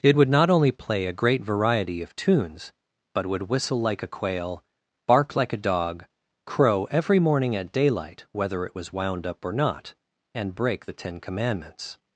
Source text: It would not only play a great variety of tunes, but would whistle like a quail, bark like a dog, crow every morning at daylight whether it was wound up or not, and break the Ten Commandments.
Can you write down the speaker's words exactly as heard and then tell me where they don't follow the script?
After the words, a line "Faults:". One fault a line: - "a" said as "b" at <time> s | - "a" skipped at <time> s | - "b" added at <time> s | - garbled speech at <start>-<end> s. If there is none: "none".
It would not only play a great variety of tunes, but would whistle like a quail, bark like a dog, crow every morning at daylight whether it was wound up or not, and break the Ten Commandments.
Faults:
none